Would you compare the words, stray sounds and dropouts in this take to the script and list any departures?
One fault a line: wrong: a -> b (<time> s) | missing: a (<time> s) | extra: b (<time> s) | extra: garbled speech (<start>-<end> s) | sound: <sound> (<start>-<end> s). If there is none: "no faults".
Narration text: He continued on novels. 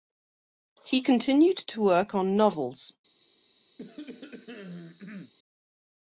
extra: to work (1.7 s)
sound: cough (3.8-5.3 s)